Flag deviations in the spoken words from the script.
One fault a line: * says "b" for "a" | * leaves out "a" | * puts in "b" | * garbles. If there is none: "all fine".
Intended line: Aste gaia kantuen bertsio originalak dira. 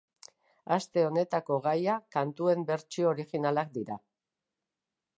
* puts in "honetako"